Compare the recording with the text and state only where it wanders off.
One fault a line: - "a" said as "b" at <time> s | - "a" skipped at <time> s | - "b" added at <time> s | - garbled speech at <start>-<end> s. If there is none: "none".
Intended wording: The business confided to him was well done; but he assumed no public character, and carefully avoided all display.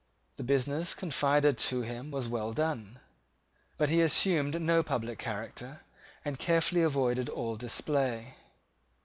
none